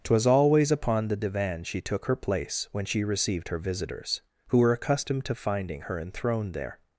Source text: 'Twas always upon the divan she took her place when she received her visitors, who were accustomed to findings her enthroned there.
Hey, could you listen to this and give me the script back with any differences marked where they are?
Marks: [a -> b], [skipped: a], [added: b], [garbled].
'Twas always upon the divan she took her place when she received her visitors, who were accustomed to [findings -> finding] her enthroned there.